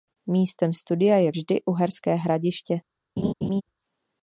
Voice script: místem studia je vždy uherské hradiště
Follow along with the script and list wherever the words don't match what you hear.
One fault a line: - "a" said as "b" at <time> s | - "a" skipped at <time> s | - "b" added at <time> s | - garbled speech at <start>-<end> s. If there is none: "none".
none